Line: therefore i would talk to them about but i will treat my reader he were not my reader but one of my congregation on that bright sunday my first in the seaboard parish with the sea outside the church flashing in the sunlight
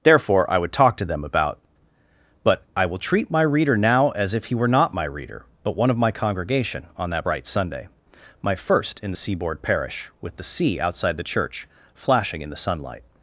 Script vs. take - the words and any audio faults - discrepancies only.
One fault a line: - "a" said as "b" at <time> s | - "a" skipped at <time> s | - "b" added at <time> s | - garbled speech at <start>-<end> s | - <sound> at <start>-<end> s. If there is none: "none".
- "now as if" added at 3.8 s